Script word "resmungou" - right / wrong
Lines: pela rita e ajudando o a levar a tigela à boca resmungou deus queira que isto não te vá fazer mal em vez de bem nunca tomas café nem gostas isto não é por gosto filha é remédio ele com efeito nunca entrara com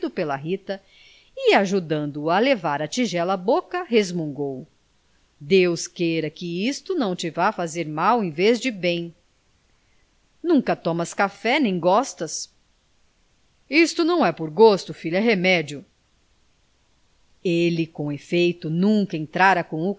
right